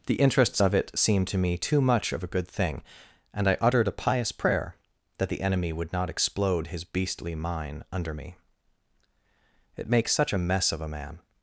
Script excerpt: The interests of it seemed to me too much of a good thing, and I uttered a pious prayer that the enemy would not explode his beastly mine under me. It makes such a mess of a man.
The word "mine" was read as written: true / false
true